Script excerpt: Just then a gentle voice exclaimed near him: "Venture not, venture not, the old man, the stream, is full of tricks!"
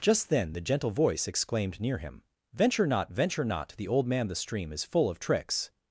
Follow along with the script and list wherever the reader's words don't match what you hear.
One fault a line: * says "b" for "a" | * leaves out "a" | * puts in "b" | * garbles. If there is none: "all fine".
* says "the" for "a"